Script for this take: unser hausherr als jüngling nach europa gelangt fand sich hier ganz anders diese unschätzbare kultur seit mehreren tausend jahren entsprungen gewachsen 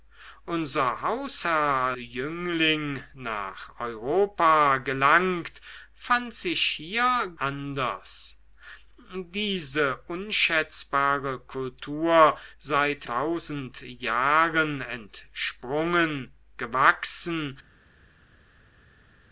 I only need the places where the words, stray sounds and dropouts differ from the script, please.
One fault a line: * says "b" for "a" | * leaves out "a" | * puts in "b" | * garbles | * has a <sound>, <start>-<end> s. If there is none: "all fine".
* leaves out "als"
* leaves out "ganz"
* leaves out "mehreren"